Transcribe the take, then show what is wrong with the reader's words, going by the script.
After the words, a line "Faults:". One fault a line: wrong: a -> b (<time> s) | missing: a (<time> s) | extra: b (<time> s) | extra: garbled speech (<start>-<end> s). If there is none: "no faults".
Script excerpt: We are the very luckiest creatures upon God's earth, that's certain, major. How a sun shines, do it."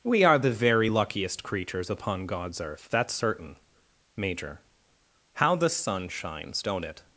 We are the very luckiest creatures upon God's earth, that's certain, major. How the sun shines, don't it."
Faults:
wrong: a -> the (5.6 s)
wrong: do -> don't (6.6 s)